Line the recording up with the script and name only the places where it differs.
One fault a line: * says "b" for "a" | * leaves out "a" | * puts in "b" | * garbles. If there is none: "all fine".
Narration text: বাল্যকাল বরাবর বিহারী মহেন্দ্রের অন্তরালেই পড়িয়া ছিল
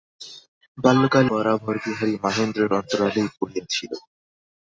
all fine